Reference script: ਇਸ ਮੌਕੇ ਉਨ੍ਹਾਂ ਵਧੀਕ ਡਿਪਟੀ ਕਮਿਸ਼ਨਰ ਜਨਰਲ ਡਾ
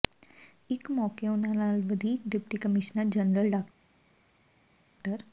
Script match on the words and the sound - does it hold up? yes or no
no